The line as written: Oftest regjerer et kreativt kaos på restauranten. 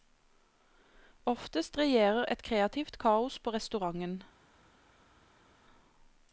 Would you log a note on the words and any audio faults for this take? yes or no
no